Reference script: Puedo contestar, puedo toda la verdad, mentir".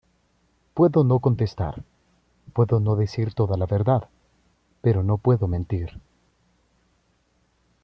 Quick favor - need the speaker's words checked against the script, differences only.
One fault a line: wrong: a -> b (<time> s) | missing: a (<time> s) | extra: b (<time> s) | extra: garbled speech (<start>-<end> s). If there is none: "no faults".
extra: no (1.0 s)
extra: no decir (2.8 s)
extra: pero no puedo (4.8 s)